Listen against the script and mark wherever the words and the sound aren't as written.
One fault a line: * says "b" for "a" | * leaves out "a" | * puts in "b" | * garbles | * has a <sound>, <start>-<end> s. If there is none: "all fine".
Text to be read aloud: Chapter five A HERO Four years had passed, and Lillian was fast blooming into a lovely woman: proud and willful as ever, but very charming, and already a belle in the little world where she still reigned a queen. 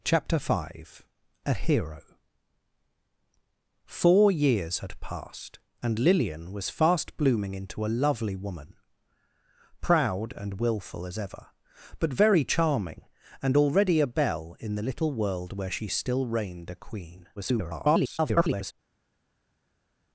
* garbles